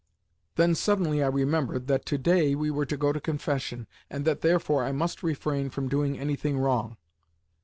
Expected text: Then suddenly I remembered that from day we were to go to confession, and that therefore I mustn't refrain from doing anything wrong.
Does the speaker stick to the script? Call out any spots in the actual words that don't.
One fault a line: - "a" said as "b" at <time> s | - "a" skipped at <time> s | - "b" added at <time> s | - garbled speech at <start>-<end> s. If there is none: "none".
- "from" said as "to" at 2.1 s
- "mustn't" said as "must" at 4.9 s